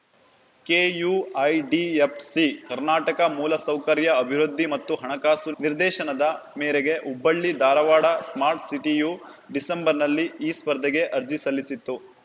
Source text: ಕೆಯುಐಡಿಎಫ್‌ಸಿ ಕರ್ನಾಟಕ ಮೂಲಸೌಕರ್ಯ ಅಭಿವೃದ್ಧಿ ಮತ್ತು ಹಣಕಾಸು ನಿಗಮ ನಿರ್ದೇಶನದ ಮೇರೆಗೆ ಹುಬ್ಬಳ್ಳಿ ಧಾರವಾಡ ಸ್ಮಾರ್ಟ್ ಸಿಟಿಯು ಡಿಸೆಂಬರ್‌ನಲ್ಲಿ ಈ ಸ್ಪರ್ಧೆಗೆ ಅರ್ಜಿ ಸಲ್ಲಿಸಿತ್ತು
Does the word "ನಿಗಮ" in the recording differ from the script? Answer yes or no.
yes